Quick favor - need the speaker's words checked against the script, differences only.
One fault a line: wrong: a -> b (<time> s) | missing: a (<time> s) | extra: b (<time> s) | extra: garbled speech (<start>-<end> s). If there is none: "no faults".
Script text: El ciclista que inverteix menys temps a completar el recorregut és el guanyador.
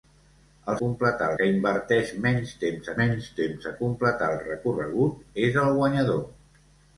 wrong: ciclista -> completar (0.8 s)
extra: menys temps (3.0 s)